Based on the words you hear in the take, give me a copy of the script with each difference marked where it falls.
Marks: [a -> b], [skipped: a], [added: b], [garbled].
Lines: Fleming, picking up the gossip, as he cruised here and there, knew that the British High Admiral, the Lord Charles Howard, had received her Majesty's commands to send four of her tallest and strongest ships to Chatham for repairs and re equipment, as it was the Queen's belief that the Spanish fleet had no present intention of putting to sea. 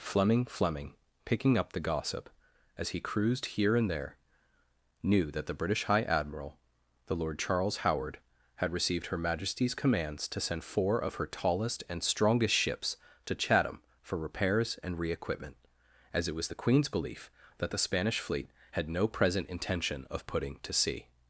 Fleming, [added: fleming] picking up the gossip, as he cruised here and there, knew that the British High Admiral, the Lord Charles Howard, had received her Majesty's commands to send four of her tallest and strongest ships to Chatham for repairs and re equipment, as it was the Queen's belief that the Spanish fleet had no present intention of putting to sea.